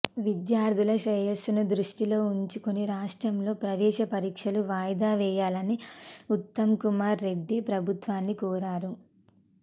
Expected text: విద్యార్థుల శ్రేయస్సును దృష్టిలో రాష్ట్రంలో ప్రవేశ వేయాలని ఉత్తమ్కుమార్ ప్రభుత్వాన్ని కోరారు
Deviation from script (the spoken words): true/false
true